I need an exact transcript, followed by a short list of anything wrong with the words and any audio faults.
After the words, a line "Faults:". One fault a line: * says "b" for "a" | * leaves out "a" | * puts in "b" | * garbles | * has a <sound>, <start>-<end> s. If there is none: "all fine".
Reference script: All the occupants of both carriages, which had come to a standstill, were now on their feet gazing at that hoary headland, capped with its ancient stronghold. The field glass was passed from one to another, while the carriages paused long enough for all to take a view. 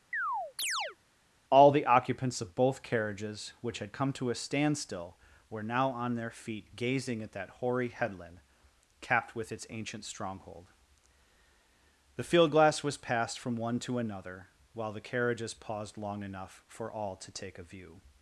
All the occupants of both carriages, which had come to a standstill, were now on their feet gazing at that hoary headland, capped with its ancient stronghold. The field glass was passed from one to another, while the carriages paused long enough for all to take a view.
Faults:
* has a chirp, 0.1-1.0 s